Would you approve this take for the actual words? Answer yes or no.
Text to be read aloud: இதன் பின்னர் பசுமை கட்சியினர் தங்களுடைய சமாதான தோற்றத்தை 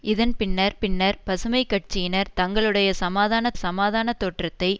no